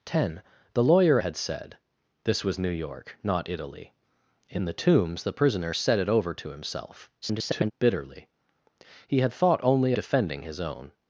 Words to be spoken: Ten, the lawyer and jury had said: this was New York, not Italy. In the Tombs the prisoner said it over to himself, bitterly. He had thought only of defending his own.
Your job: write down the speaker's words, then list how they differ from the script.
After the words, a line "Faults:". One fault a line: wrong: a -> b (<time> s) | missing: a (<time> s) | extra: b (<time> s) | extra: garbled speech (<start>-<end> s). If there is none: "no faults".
Ten, the lawyer had said: this was New York, not Italy. In the Tombs the prisoner said it over to himself, [garbled] bitterly. He had thought only defending his own.
Faults:
missing: and jury (1.2 s)
extra: garbled speech (7.2-7.7 s)
missing: of (9.9 s)